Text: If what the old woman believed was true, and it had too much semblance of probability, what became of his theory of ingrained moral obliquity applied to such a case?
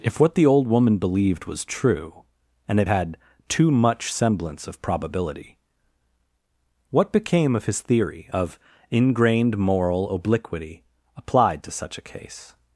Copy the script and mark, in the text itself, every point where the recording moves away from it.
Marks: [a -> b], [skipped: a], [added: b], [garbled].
If what the old woman believed was true, and it had too much semblance of probability, what became of his theory of ingrained moral obliquity applied to such a case?